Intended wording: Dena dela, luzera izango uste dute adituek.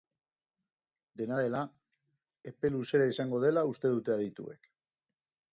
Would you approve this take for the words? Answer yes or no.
no